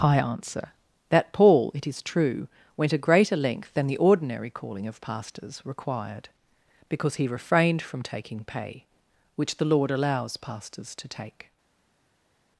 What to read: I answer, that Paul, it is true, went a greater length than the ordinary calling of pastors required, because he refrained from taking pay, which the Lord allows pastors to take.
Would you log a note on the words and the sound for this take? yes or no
no